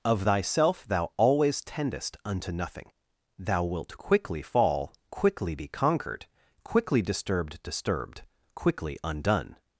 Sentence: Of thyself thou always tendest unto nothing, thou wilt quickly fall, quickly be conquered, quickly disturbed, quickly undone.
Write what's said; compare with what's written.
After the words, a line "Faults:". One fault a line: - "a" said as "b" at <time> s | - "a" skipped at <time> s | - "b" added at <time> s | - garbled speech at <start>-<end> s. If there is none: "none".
Of thyself thou always tendest unto nothing, thou wilt quickly fall, quickly be conquered, quickly disturbed disturbed, quickly undone.
Faults:
- "disturbed" added at 7.6 s